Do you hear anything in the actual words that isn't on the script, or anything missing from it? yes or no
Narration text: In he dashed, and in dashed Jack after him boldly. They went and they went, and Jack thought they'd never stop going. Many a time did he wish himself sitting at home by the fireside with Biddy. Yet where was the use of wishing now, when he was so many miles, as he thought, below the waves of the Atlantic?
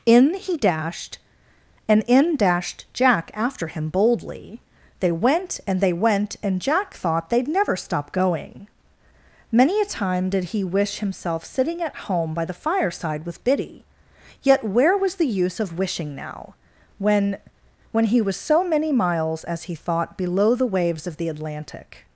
yes